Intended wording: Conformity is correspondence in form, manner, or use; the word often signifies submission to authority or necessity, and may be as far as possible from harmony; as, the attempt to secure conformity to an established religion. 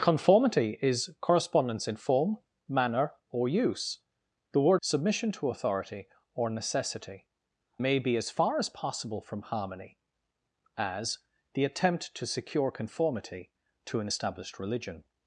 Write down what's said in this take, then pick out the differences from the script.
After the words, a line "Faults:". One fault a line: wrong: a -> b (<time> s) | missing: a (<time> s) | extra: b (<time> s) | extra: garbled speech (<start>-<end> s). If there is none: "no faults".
Conformity is correspondence in form, manner, or use; the word submission to authority or necessity, may be as far as possible from harmony; as, the attempt to secure conformity to an established religion.
Faults:
missing: often signifies (4.8 s)
missing: and (7.3 s)